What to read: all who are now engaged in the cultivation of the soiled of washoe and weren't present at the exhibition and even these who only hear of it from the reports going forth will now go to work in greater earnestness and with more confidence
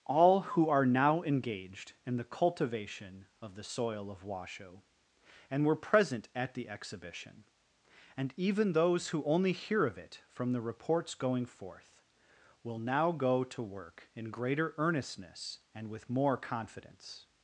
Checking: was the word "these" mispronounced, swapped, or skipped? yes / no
yes